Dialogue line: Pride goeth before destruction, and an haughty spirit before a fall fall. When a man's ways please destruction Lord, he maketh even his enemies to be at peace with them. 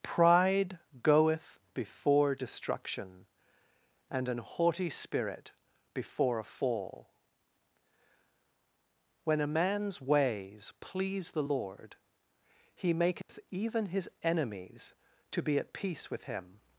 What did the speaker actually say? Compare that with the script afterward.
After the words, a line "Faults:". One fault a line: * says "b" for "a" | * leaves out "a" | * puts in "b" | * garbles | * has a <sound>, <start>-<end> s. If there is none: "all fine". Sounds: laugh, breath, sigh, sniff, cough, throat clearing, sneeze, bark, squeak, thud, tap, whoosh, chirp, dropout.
Pride goeth before destruction, and an haughty spirit before a fall. When a man's ways please the Lord, he maketh even his enemies to be at peace with him.
Faults:
* leaves out "fall"
* says "the" for "destruction"
* has a dropout, 13.2-13.3 s
* says "him" for "them"